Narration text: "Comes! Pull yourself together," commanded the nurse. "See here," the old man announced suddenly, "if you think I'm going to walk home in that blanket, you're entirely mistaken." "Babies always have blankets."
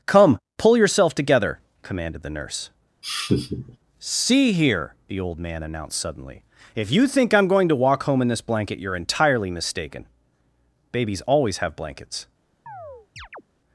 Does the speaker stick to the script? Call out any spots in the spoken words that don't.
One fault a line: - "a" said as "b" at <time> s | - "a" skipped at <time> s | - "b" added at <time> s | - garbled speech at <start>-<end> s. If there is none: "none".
- "Comes" said as "Come" at 0.1 s
- "that" said as "this" at 8.3 s